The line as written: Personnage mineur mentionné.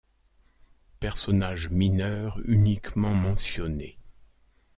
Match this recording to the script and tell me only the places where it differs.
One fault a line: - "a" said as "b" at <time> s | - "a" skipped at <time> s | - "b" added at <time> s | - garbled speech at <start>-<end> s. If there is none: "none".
- "uniquement" added at 2.5 s